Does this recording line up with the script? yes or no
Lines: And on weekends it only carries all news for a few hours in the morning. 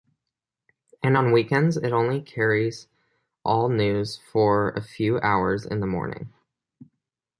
yes